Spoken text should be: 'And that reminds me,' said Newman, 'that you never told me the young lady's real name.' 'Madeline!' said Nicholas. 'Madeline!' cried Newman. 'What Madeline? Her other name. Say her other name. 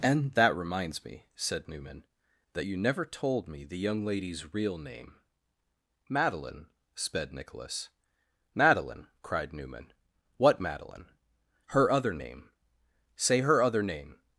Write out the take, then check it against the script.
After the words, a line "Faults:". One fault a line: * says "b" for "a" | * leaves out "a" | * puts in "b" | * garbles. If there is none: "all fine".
'And that reminds me,' said Newman, 'that you never told me the young lady's real name.' 'Madeline!' sped Nicholas. 'Madeline!' cried Newman. 'What Madeline? Her other name. Say her other name.
Faults:
* says "sped" for "said"